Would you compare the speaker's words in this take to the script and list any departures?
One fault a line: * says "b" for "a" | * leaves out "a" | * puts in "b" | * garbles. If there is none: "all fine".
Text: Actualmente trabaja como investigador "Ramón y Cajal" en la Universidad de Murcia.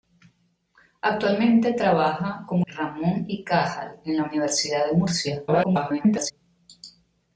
* leaves out "investigador"
* garbles